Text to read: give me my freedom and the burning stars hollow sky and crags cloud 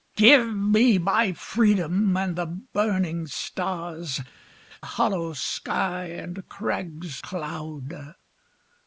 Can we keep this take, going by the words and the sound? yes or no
yes